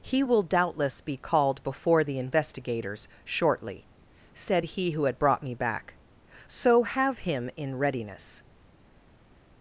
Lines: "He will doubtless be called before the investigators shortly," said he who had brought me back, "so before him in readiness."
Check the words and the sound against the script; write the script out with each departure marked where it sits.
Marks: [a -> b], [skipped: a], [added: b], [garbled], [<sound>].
"He will doubtless be called before the investigators shortly," said he who had brought me back, "so [before -> have] him in readiness."